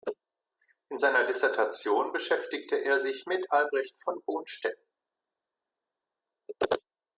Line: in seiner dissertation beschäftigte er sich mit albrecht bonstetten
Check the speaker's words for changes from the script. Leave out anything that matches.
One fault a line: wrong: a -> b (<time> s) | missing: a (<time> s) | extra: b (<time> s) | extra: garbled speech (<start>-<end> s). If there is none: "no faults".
extra: von (4.0 s)